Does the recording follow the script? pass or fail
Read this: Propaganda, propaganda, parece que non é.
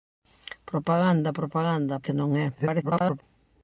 fail